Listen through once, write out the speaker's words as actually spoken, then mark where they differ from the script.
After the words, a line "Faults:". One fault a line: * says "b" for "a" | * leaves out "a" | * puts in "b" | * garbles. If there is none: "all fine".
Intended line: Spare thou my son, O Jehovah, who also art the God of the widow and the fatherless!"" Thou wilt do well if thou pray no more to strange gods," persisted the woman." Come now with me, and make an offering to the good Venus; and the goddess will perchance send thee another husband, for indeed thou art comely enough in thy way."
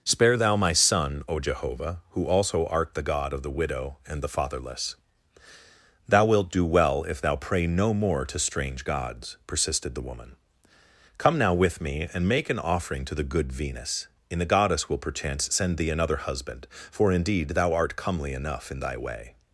Spare thou my son, O Jehovah, who also art the God of the widow and the fatherless!"" Thou wilt do well if thou pray no more to strange gods," persisted the woman." Come now with me, and make an offering to the good Venus; and the goddess will perchance send thee another husband, for indeed thou art comely enough in thy way."
Faults:
all fine